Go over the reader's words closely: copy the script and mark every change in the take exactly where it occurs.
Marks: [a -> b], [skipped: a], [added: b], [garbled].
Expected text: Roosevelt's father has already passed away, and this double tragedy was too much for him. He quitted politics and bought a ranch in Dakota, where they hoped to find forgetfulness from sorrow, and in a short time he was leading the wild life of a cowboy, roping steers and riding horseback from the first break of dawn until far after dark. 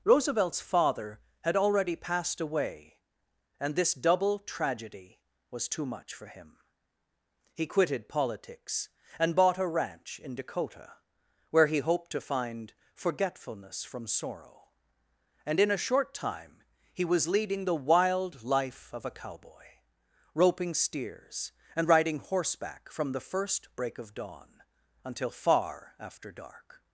Roosevelt's father [has -> had] already passed away, and this double tragedy was too much for him. He quitted politics and bought a ranch in Dakota, where [they -> he] hoped to find forgetfulness from sorrow, and in a short time he was leading the wild life of a cowboy, roping steers and riding horseback from the first break of dawn until far after dark.